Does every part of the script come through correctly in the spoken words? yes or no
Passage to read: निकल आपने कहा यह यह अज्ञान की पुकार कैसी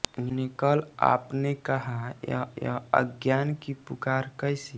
yes